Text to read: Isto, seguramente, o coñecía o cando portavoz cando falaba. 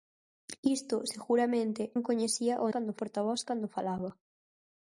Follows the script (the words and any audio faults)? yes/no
yes